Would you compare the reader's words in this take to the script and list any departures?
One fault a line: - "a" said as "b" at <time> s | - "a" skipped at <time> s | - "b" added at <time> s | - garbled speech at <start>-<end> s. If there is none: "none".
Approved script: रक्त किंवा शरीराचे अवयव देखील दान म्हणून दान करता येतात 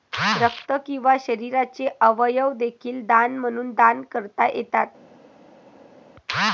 none